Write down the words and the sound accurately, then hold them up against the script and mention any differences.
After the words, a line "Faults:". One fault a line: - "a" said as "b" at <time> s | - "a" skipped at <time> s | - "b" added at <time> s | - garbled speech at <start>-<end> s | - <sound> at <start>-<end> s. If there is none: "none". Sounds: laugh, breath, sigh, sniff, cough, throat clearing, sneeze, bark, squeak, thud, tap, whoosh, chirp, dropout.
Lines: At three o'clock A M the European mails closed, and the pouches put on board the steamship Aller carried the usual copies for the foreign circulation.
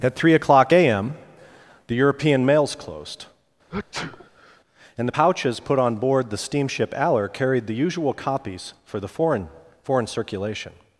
At three o'clock A M the European mails closed, and the pouches put on board the steamship Aller carried the usual copies for the foreign foreign circulation.
Faults:
- sneeze at 3.7-4.6 s
- "foreign" added at 9.8 s